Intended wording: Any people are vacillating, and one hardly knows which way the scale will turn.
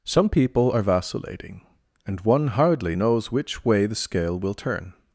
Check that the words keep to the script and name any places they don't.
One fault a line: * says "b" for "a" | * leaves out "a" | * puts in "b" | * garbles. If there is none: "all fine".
* says "Some" for "Any"